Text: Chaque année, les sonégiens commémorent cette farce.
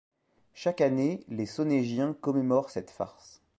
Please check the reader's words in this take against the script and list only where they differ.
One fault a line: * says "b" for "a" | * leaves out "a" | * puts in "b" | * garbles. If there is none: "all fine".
all fine